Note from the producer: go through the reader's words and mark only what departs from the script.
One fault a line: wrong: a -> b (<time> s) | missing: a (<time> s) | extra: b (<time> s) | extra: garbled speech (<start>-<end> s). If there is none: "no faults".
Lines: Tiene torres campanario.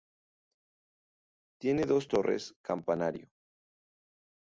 extra: dos (1.8 s)